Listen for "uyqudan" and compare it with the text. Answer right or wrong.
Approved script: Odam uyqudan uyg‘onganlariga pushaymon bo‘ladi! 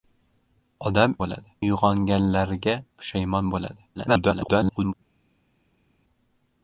wrong